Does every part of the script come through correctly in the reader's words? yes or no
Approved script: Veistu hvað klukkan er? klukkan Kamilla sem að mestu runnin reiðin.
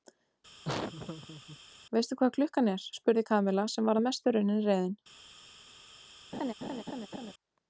no